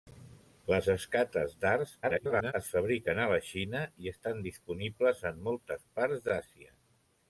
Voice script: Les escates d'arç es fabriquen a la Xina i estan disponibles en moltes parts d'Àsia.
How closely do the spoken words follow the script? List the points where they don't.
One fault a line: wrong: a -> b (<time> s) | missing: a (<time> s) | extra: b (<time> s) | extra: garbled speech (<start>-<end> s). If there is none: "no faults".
extra: garbled speech (2.0-2.5 s)